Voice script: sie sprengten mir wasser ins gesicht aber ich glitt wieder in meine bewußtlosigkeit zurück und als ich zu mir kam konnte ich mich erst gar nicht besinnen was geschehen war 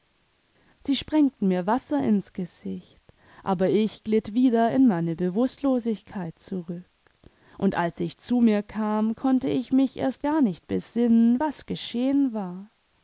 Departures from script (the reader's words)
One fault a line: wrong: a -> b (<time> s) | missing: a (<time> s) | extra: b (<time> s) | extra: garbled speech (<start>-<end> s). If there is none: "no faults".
no faults